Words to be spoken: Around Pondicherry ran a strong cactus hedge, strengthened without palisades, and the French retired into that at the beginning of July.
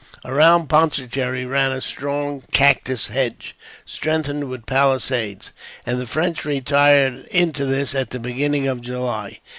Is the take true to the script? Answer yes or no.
no